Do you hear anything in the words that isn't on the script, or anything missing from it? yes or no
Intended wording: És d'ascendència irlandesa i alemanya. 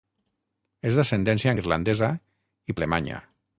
no